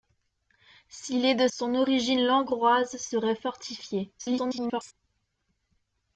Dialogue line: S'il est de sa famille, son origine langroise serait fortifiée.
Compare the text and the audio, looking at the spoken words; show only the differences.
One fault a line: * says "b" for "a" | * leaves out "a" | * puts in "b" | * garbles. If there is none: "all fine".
* leaves out "sa famille"
* garbles